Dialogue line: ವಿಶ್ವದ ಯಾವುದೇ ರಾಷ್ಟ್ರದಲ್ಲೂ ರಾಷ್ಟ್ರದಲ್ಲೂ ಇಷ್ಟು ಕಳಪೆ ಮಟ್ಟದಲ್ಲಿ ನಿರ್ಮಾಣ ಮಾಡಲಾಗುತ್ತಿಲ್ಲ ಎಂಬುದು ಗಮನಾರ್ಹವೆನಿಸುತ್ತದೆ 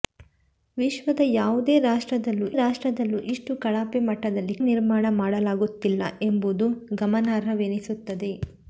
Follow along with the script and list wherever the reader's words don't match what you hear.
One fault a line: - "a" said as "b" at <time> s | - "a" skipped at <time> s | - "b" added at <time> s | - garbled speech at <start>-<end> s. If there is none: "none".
none